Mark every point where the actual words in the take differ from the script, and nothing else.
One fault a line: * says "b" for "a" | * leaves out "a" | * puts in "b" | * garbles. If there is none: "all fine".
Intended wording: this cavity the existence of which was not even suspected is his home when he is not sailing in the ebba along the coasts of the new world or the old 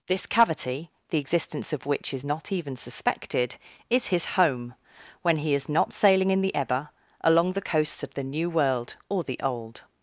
* says "is" for "was"